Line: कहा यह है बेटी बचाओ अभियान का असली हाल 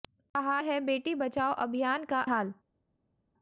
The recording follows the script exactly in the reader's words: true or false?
false